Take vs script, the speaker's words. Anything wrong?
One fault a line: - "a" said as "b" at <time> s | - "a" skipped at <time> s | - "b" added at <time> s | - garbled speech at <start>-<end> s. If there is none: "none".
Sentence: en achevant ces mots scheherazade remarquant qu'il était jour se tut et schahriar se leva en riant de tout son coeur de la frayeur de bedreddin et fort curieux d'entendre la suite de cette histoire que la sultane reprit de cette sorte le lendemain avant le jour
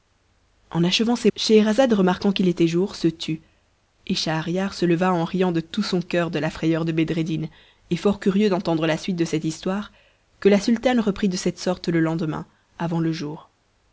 - "mots" skipped at 1.3 s